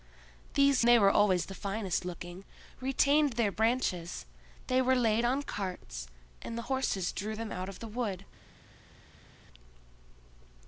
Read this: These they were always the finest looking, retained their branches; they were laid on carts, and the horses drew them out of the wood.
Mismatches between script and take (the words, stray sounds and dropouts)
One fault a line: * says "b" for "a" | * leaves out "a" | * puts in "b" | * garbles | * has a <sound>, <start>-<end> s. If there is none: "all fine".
all fine